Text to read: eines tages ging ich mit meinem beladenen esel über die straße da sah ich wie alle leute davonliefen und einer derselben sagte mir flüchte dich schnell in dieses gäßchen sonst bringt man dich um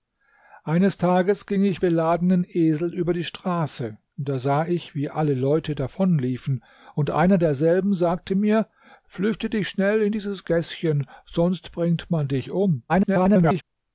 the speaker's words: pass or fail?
fail